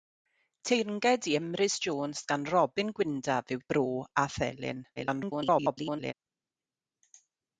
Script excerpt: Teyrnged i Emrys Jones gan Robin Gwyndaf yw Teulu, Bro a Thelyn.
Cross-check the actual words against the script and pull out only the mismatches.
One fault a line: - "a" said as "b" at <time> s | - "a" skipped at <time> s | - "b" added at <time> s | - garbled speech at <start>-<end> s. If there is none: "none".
- "Teulu" skipped at 3.6 s
- garbled speech at 5.0-6.1 s